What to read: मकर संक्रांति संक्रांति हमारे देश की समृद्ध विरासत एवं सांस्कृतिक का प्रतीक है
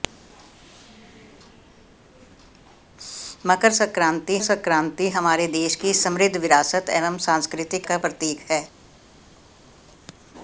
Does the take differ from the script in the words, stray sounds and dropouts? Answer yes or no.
no